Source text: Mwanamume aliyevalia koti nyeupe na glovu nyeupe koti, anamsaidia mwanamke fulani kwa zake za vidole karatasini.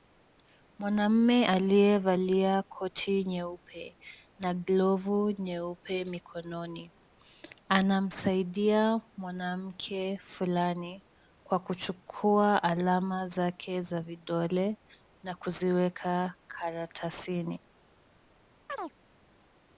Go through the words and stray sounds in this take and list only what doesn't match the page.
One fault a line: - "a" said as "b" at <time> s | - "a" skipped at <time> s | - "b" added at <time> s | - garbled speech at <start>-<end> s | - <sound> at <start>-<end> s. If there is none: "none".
- "koti" said as "mikononi" at 6.0 s
- "kuchukua alama" added at 11.6 s
- "na kuziweka" added at 15.2 s
- chirp at 18.7-18.9 s